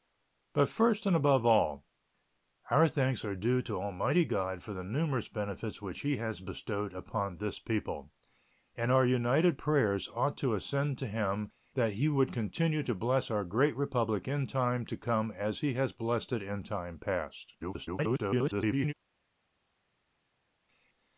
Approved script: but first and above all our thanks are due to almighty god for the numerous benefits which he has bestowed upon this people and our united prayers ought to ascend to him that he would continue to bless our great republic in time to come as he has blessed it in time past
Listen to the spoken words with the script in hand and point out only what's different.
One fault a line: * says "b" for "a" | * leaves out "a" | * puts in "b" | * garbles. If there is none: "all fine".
* garbles